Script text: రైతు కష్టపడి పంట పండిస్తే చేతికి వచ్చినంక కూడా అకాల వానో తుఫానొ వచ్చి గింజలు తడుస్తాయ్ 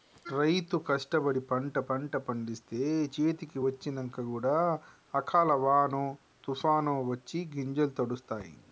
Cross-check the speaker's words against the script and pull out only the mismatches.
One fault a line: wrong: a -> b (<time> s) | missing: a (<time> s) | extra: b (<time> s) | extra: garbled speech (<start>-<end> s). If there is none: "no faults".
extra: పంట (1.9 s)